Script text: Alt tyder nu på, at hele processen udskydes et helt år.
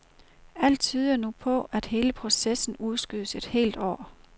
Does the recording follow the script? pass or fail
pass